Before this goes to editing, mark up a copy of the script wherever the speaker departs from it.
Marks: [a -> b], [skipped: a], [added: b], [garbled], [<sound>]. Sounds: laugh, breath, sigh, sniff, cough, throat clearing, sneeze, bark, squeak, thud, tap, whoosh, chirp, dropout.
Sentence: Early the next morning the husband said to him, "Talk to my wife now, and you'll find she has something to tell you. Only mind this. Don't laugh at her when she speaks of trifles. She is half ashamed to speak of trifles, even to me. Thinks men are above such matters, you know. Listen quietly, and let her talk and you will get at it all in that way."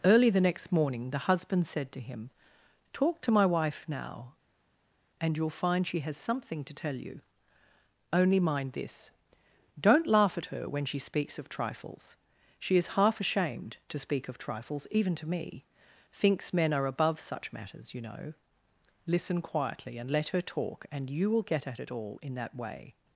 Early the next morning the husband said to him, "Talk to my wife now, and you'll find she has something to tell you. Only mind this. Don't laugh at her when she speaks of trifles. She is half ashamed to speak of trifles, even to me. Thinks men are above such matters, you know. Listen quietly, and let her talk and you will get at it all in that way."